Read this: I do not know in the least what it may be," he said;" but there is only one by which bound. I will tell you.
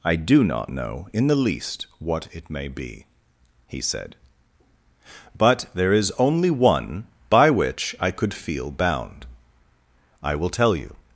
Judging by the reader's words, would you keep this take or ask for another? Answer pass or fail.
fail